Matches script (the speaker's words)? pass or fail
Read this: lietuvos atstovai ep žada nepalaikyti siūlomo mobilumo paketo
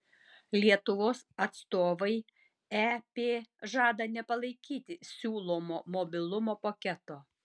pass